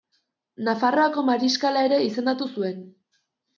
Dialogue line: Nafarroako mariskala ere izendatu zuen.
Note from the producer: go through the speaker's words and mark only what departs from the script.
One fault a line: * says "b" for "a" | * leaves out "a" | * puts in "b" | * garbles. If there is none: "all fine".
all fine